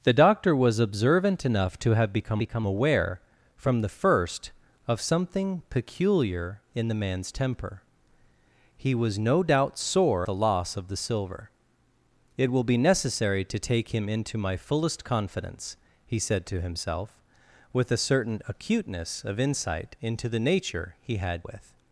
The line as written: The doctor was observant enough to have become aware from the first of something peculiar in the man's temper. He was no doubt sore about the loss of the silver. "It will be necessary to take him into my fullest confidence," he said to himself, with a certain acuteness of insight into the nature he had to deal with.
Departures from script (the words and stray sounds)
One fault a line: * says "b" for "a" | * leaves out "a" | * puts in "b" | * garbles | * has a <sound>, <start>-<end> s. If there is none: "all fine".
* puts in "become"
* leaves out "about"
* leaves out "to deal"